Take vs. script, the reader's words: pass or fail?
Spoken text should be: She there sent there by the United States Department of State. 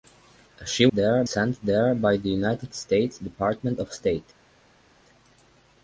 pass